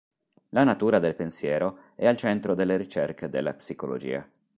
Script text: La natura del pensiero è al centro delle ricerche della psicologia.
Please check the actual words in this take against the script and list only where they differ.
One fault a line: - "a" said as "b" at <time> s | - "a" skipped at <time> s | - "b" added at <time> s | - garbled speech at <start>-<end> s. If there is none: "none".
none